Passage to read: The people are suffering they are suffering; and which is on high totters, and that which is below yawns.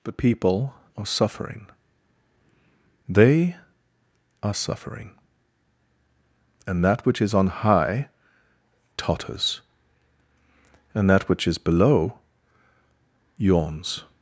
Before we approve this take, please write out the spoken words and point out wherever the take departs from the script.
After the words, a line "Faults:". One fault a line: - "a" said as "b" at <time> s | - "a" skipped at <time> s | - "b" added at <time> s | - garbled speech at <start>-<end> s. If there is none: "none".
The people are suffering they are suffering; and that which is on high totters, and that which is below yawns.
Faults:
- "that" added at 6.8 s